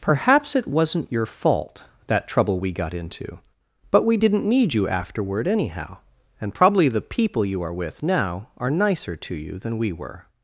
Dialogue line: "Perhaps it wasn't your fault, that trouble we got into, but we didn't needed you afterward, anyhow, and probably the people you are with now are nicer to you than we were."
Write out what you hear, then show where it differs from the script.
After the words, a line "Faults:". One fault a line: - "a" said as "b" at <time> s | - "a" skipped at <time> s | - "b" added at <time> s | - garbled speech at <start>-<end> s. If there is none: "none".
"Perhaps it wasn't your fault, that trouble we got into, but we didn't need you afterward, anyhow, and probably the people you are with now are nicer to you than we were."
Faults:
- "needed" said as "need" at 4.5 s